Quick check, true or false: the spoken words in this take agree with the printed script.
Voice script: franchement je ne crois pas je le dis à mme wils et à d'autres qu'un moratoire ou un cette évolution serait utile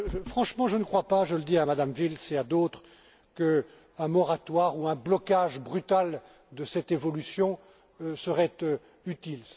false